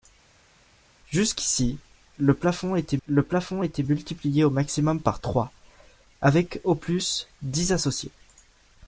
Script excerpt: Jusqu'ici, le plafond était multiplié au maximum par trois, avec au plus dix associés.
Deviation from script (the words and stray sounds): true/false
true